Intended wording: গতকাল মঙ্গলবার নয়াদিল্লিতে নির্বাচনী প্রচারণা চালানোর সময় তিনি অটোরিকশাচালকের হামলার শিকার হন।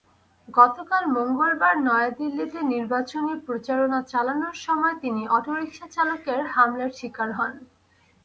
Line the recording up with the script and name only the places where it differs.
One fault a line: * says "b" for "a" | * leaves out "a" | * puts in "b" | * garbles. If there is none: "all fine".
all fine